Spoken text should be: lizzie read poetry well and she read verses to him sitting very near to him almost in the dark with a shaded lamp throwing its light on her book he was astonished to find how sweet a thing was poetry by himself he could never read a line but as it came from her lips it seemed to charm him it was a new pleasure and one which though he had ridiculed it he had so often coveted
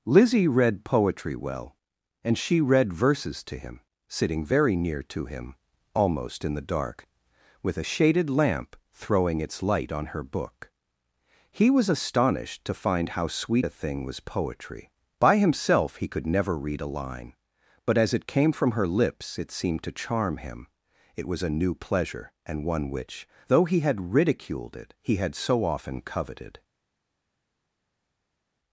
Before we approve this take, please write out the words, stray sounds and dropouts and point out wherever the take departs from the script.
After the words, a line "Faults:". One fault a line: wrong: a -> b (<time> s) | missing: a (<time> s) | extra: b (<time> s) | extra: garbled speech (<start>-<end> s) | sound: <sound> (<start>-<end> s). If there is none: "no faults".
lizzie read poetry well and she read verses to him sitting very near to him almost in the dark with a shaded lamp throwing its light on her book he was astonished to find how sweet a thing was poetry by himself he could never read a line but as it came from her lips it seemed to charm him it was a new pleasure and one which though he had ridiculed it he had so often coveted
Faults:
no faults